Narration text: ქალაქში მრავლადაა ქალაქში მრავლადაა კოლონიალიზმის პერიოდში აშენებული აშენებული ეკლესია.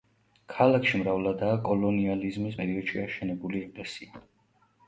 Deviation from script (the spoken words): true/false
true